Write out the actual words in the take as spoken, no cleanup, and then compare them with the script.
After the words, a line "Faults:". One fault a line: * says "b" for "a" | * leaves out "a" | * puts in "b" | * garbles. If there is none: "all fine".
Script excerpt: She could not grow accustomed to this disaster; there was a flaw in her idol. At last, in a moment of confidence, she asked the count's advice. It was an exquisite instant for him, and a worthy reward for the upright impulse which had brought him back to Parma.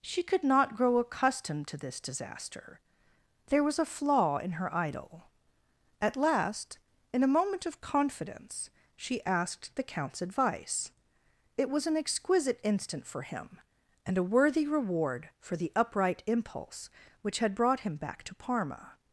She could not grow accustomed to this disaster; there was a flaw in her idol. At last, in a moment of confidence, she asked the count's advice. It was an exquisite instant for him, and a worthy reward for the upright impulse which had brought him back to Parma.
Faults:
all fine